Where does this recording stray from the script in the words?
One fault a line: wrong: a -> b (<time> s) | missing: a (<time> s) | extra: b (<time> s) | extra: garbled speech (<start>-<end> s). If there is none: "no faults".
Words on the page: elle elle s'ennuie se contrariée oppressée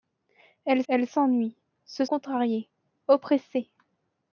no faults